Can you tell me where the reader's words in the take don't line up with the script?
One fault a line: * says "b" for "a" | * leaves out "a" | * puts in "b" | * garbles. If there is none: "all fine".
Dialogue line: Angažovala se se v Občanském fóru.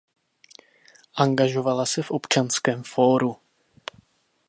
* leaves out "se"